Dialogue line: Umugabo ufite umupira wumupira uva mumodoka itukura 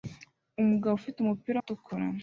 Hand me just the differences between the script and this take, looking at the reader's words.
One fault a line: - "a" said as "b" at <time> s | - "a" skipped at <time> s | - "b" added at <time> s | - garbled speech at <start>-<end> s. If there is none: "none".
- "wumupira uva mumodoka" skipped at 1.6 s